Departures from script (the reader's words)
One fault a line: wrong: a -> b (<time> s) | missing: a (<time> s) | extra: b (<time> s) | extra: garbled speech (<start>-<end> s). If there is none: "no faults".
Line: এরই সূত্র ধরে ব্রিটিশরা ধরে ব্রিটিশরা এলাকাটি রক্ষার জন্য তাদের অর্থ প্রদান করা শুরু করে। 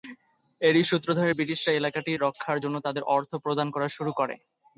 missing: ধরে ব্রিটিশরা (1.8 s)